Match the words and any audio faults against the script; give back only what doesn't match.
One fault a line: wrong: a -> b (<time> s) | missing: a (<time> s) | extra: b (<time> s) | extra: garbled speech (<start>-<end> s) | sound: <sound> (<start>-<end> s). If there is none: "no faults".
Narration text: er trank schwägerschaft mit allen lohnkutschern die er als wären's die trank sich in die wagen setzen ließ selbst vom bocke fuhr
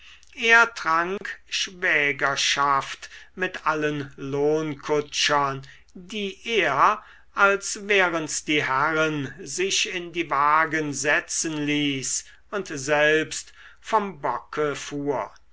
sound: dropout (1.2-1.2 s)
wrong: trank -> herren (8.6 s)
extra: und (12.5 s)